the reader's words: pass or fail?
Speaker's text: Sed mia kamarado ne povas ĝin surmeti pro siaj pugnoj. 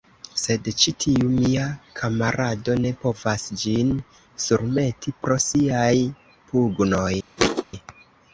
fail